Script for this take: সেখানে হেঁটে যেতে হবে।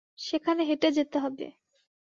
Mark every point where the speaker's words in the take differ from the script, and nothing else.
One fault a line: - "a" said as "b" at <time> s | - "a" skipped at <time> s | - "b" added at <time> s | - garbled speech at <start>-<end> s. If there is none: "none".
none